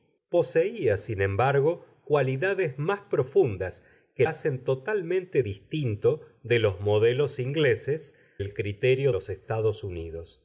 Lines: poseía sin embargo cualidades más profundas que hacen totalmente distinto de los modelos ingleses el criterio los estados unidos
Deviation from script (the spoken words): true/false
false